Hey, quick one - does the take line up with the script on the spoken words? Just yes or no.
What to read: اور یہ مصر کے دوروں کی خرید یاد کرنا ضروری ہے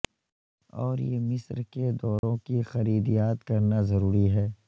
yes